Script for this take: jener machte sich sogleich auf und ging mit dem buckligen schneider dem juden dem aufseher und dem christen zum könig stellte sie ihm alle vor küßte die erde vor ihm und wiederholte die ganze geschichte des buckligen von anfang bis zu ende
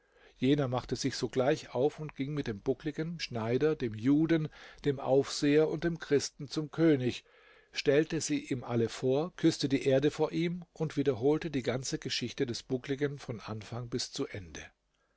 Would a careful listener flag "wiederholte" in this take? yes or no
no